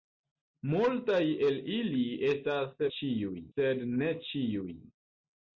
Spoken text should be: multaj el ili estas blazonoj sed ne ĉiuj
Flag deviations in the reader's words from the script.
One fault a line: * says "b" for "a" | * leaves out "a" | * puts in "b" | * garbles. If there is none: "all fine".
* says "ĉiuj" for "blazonoj"